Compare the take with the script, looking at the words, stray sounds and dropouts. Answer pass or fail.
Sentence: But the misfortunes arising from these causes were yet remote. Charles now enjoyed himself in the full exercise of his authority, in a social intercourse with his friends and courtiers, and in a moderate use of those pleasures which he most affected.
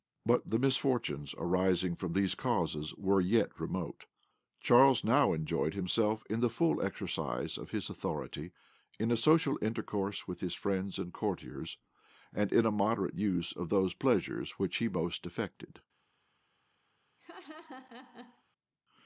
fail